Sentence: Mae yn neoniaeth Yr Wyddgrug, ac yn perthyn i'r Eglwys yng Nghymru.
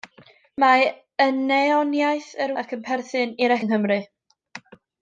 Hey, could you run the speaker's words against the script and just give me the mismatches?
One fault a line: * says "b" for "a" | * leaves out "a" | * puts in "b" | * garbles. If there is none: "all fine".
* leaves out "Wyddgrug"
* leaves out "Eglwys"